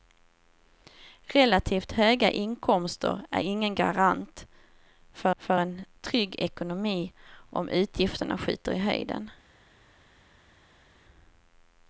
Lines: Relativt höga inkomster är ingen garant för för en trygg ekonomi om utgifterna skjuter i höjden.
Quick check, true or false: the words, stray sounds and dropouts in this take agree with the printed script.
true